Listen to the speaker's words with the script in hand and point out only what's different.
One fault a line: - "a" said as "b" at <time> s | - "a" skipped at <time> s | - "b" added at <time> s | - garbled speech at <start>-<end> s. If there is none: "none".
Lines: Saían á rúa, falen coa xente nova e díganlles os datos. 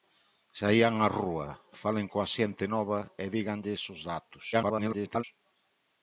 - garbled speech at 4.5-5.2 s